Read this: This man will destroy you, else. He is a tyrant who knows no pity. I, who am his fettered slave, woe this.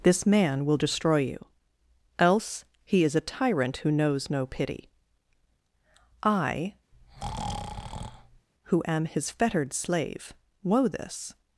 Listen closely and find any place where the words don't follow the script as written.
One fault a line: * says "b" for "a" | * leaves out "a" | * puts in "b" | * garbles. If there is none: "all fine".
all fine